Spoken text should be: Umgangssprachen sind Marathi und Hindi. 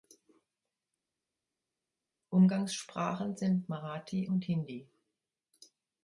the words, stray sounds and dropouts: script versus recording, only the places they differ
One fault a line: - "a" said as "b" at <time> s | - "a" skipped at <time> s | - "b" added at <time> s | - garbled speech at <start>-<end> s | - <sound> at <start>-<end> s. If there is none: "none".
none